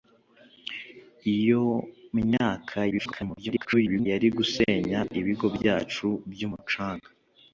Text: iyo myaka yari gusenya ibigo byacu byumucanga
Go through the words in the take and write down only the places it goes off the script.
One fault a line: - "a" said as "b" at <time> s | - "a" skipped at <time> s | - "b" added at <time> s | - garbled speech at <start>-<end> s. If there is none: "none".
- garbled speech at 2.9-4.1 s